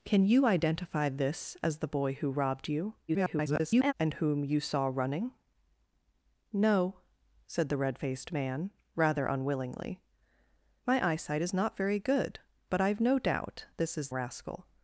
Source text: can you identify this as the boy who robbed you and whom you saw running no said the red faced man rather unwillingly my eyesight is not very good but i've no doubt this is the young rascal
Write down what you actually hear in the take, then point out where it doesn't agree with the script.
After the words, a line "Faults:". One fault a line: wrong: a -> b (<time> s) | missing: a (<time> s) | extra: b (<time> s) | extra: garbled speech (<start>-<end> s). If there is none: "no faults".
can you identify this as the boy who robbed you [garbled] and whom you saw running no said the red faced man rather unwillingly my eyesight is not very good but i've no doubt this is rascal
Faults:
extra: garbled speech (3.1-3.9 s)
missing: the young (14.1 s)